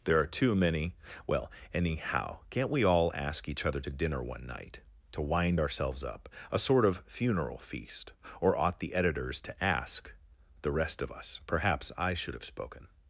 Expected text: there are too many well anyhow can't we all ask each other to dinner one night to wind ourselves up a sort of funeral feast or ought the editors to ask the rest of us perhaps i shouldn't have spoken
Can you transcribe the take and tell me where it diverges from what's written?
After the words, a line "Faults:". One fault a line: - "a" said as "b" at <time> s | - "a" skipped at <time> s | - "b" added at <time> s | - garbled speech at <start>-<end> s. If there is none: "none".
there are too many well anyhow can't we all ask each other to dinner one night to wind ourselves up a sort of funeral feast or ought the editors to ask the rest of us perhaps i should have spoken
Faults:
- "shouldn't" said as "should" at 12.1 s